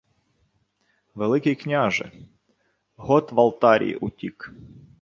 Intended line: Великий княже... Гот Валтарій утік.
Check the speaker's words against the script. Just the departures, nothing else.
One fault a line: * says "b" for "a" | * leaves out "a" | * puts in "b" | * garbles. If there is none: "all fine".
all fine